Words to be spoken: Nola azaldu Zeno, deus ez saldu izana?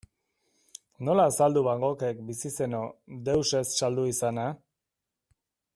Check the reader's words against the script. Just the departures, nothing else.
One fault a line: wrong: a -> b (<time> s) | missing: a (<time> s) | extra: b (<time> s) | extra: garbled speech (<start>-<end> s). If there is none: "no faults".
extra: Van Goghek bizi (1.7 s)